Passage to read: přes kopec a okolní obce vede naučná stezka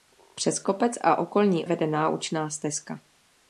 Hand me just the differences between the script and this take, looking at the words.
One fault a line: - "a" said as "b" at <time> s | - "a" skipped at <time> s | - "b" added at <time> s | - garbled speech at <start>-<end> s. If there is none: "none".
- "obce" skipped at 1.6 s